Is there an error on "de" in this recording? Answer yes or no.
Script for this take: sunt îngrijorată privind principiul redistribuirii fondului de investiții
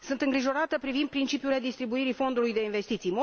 no